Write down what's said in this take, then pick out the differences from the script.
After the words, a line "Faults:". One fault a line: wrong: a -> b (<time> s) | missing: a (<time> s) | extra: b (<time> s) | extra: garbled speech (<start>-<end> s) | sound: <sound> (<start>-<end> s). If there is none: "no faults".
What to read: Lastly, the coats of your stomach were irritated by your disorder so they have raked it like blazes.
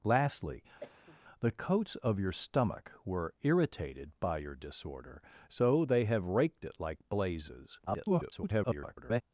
Lastly, the coats of your stomach were irritated by your disorder so they have raked it like blazes. [garbled]
Faults:
sound: cough (0.8-1.2 s)
extra: garbled speech (7.9-9.2 s)